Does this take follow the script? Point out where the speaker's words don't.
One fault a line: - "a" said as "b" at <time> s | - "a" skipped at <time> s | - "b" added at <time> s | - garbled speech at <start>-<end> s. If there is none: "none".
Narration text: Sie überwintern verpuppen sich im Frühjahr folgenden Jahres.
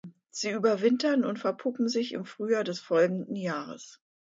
- "und" added at 1.2 s
- "des" added at 2.6 s